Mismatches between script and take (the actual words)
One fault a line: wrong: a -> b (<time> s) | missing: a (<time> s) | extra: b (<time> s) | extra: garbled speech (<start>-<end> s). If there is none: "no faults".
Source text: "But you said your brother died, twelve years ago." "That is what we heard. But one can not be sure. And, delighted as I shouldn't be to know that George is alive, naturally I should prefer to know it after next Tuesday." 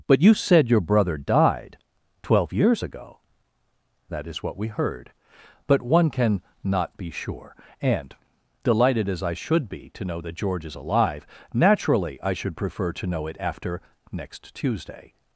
wrong: shouldn't -> should (9.3 s)